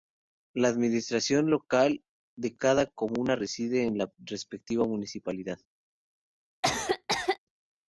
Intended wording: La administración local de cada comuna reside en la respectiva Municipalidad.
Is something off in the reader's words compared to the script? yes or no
no